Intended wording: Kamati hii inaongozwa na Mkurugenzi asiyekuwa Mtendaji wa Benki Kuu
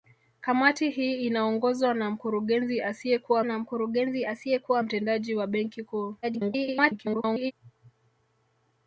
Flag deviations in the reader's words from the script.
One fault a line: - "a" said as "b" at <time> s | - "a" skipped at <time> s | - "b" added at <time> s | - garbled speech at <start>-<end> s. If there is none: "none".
- "na Mkurugenzi asiyekuwa" added at 3.4 s
- garbled speech at 6.2-7.5 s